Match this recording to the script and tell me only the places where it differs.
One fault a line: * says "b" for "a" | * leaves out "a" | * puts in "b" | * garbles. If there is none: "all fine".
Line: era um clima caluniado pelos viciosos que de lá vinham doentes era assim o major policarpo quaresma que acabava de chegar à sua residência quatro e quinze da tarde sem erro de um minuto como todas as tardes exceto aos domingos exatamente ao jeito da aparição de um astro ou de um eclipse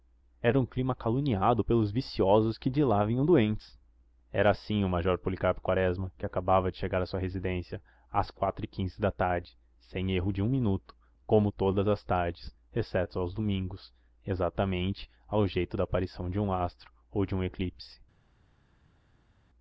* puts in "às"